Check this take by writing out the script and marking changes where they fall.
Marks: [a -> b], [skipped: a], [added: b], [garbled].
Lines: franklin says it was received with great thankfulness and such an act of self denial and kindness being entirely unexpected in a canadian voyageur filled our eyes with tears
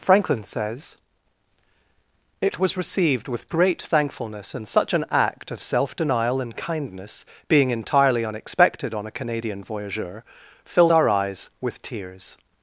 franklin says it was received with great thankfulness and such an act of self denial and kindness being entirely unexpected [in -> on] a canadian voyageur filled our eyes with tears